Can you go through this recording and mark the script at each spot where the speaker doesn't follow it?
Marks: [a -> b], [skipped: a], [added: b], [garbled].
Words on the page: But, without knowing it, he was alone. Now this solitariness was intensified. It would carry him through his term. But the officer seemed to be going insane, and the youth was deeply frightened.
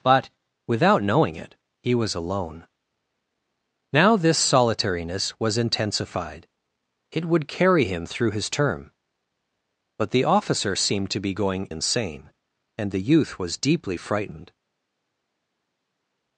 But, without knowing it, he was alone. Now this solitariness was intensified. It would carry him through his term. But the officer seemed to be going insane, and the youth was deeply frightened.